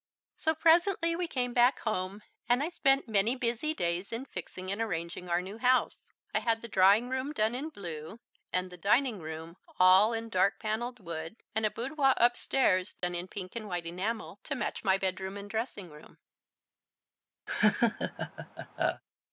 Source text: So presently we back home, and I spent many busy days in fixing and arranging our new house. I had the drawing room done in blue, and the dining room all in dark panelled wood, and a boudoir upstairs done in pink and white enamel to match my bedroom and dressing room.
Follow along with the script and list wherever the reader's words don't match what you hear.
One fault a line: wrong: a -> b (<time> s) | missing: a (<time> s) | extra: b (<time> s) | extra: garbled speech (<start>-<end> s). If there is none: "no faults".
extra: came (1.3 s)